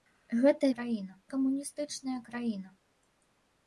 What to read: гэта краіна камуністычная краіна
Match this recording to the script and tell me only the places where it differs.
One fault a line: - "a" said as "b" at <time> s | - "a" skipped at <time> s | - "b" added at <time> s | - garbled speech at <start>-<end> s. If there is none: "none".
none